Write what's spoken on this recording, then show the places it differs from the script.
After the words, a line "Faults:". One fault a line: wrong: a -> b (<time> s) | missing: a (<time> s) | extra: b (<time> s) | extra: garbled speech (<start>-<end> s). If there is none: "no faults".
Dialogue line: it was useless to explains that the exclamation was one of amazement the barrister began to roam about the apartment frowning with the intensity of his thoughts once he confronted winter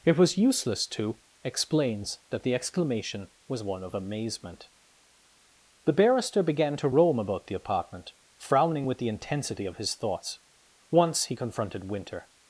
it was useless to explains that the exclamation was one of amazement the barrister began to roam about the apartment frowning with the intensity of his thoughts once he confronted winter
Faults:
no faults